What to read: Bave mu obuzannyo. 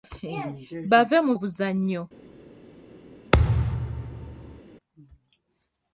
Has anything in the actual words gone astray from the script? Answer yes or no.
no